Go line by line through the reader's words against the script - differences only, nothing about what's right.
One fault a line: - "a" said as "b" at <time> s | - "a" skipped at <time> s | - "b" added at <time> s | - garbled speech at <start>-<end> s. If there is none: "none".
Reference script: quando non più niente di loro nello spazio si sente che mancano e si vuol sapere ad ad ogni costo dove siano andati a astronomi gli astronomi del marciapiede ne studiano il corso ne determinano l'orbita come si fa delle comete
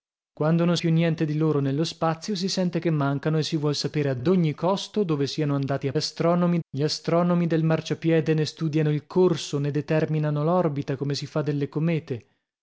none